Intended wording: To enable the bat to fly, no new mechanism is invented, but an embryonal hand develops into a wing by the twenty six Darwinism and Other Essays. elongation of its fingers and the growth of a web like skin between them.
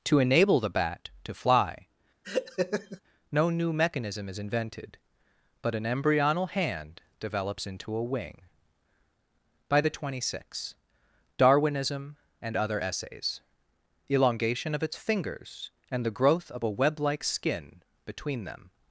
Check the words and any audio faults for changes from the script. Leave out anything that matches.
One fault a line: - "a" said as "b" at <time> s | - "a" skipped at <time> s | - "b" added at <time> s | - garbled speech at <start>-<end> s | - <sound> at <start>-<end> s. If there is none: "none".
- laugh at 2.2-3.0 s